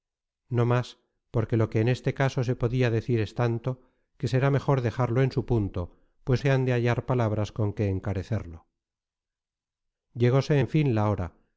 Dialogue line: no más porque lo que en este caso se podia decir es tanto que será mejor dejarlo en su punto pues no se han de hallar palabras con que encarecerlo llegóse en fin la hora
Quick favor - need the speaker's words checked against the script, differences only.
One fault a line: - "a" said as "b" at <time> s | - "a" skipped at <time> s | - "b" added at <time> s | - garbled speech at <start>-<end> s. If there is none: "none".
- "no" skipped at 6.4 s